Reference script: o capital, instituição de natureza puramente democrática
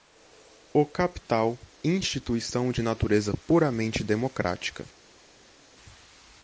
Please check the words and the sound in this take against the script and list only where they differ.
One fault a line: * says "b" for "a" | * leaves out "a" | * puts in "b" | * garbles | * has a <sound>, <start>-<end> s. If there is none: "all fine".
all fine